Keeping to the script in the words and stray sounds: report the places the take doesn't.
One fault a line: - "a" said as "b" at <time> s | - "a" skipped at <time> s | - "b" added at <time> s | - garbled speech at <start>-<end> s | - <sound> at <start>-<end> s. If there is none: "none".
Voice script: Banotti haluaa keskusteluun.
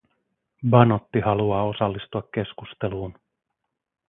- "osallistua" added at 1.6 s